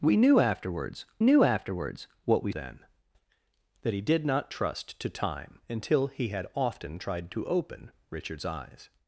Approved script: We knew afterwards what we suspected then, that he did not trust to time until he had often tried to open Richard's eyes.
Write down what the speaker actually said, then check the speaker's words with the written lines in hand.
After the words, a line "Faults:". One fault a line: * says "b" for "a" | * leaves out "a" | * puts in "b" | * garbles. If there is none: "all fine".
We knew afterwards knew afterwards what we then, that he did not trust to time until he had often tried to open Richard's eyes.
Faults:
* puts in "knew afterwards"
* leaves out "suspected"